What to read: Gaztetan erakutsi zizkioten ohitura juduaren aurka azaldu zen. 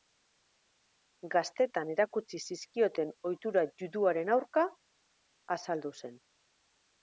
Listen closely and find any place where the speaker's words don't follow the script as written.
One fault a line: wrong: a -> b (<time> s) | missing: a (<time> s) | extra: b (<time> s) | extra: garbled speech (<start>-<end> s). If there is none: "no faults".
no faults